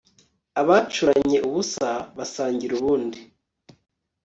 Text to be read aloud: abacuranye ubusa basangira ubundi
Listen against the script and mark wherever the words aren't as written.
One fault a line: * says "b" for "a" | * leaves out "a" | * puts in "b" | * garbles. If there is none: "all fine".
all fine